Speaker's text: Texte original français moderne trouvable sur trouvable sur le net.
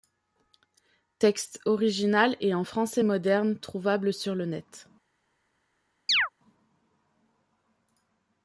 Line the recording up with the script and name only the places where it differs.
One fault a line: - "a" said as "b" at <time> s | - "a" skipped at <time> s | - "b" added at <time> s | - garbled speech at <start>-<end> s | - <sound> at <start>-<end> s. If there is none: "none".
- "et en" added at 2.4 s
- "trouvable sur" skipped at 4.3 s
- chirp at 6.1-6.3 s